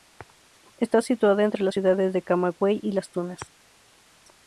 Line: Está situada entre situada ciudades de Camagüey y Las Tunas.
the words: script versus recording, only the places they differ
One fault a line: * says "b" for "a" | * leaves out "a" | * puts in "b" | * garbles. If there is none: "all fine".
* says "las" for "situada"